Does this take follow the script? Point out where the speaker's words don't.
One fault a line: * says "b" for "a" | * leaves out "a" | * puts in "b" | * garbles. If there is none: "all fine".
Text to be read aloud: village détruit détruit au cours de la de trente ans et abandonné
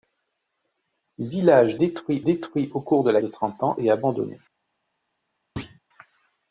all fine